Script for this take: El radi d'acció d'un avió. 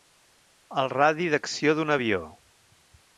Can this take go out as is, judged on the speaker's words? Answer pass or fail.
pass